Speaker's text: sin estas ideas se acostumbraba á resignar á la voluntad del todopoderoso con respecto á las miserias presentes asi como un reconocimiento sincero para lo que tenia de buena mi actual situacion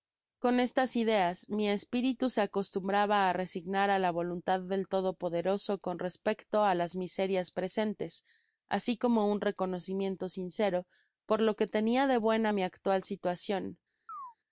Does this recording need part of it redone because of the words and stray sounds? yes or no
yes